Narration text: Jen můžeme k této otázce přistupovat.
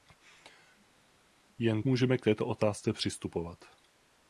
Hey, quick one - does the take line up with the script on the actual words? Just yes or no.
yes